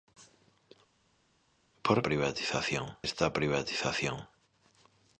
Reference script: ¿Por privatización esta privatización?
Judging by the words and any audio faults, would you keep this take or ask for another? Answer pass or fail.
pass